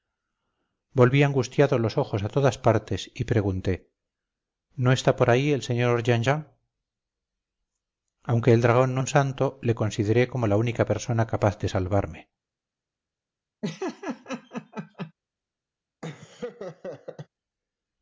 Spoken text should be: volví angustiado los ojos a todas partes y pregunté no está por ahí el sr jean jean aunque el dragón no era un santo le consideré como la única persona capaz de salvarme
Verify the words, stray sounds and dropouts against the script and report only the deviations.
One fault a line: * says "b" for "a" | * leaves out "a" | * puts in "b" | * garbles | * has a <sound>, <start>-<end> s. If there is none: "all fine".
* leaves out "era"
* has a laugh, 13.6-15.1 s
* has a laugh, 16.0-17.3 s